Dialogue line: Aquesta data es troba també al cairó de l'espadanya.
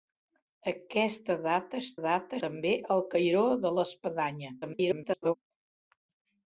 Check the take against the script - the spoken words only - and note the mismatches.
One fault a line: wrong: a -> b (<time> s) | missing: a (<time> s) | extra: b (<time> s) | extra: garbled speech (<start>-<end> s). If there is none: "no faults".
wrong: troba -> data (2.0 s)
extra: garbled speech (4.6-5.3 s)